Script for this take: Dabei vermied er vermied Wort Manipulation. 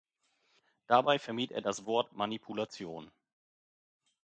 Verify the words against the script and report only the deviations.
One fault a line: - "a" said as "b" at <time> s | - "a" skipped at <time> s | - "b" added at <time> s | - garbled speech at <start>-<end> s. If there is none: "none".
- "vermied" said as "das" at 1.6 s